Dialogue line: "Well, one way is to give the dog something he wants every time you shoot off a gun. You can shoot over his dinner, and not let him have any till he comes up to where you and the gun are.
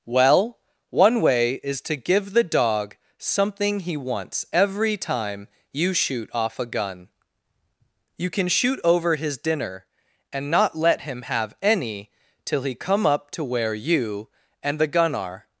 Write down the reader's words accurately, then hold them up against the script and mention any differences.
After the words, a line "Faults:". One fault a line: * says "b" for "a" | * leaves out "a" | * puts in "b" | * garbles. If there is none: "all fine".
"Well, one way is to give the dog something he wants every time you shoot off a gun. You can shoot over his dinner, and not let him have any till he come up to where you and the gun are.
Faults:
* says "come" for "comes"